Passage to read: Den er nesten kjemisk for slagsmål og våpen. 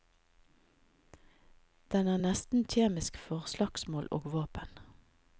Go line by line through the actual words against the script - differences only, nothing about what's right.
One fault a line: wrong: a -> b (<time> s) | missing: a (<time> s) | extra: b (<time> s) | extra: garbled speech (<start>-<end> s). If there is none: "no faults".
no faults